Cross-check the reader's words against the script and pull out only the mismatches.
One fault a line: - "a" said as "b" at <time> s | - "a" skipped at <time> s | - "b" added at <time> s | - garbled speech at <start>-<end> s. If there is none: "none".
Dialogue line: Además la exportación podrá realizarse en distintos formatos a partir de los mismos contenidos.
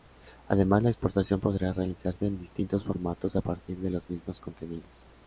none